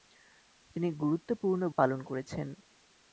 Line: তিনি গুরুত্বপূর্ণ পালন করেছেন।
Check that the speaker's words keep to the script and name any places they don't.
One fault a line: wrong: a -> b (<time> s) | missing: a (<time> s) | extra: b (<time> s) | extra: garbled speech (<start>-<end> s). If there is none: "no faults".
no faults